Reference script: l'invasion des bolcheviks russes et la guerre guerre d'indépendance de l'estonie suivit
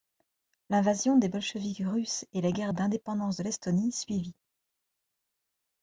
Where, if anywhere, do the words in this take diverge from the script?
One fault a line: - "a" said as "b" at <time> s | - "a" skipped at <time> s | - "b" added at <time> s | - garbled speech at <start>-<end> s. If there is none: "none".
- "guerre" skipped at 2.7 s